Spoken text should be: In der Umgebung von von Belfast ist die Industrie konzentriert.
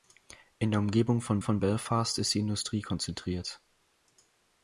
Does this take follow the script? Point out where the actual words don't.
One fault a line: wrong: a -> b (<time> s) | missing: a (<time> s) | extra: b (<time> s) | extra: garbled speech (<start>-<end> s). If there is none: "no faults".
no faults